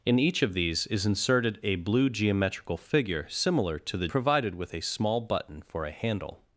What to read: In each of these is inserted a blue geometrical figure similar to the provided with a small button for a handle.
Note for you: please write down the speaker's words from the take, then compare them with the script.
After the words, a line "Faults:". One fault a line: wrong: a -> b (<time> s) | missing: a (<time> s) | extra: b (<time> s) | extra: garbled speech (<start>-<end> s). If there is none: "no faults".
In each of these is inserted a blue geometrical figure similar to the provided with a small button for a handle.
Faults:
no faults